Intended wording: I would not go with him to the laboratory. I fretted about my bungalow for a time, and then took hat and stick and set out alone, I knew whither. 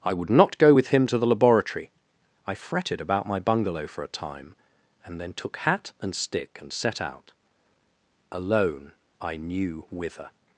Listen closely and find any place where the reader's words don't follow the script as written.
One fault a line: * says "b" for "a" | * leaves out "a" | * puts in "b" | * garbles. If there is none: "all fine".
all fine